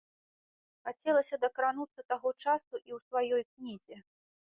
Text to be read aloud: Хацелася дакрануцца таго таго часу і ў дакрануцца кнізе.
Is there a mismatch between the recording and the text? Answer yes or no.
yes